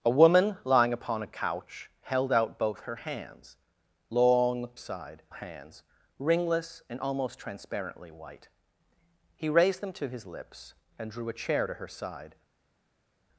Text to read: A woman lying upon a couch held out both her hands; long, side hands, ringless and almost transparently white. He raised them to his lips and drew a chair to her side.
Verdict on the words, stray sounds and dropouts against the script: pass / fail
pass